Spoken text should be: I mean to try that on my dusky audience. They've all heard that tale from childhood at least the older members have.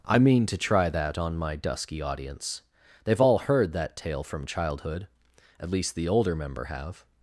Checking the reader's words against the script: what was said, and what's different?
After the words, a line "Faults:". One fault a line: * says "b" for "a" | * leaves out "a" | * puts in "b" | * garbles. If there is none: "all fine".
I mean to try that on my dusky audience. They've all heard that tale from childhood at least the older member have.
Faults:
* says "member" for "members"